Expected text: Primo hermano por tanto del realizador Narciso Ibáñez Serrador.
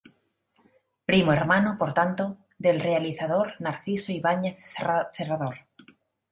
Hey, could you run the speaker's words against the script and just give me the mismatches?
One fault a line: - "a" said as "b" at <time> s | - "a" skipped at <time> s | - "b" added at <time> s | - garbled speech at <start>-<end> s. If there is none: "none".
none